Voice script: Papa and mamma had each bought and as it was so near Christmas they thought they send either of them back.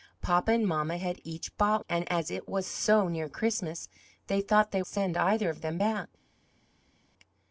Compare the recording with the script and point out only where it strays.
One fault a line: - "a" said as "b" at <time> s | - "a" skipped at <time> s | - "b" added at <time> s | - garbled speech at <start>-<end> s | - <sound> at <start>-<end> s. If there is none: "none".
none